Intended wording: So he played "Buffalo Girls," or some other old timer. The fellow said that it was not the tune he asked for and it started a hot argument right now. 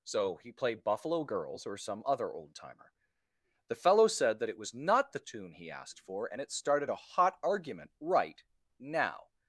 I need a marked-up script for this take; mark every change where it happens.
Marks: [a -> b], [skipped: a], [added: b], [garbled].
So he played "Buffalo Girls," or some other old timer. The fellow said that it was not the tune he asked for and it started a hot argument right now.